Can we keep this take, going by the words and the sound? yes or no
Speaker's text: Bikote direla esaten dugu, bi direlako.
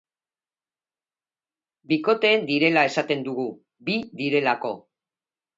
yes